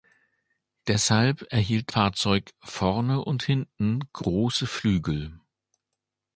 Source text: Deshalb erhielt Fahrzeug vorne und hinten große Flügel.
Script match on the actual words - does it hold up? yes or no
yes